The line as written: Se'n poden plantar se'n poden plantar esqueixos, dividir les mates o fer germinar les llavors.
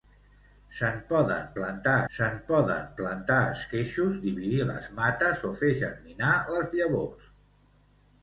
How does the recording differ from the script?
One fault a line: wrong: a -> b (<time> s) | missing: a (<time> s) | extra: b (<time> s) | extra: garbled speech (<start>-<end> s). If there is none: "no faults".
no faults